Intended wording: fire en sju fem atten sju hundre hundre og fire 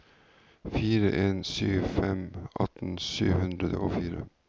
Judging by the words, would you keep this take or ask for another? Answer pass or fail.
fail